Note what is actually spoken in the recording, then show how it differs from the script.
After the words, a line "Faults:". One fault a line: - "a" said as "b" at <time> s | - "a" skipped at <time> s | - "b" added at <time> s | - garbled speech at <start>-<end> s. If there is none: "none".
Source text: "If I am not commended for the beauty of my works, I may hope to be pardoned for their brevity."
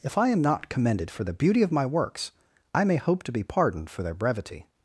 "If I am not commended for the beauty of my works, I may hope to be pardoned for their brevity."
Faults:
none